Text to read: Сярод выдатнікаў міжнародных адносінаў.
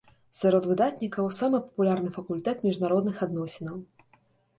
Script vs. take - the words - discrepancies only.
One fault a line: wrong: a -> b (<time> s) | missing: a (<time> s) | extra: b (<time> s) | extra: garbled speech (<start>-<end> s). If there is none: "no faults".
extra: самы папулярны факультэт (1.4 s)